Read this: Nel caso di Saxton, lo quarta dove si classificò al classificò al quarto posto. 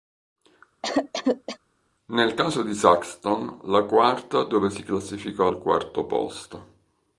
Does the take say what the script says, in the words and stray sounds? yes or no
no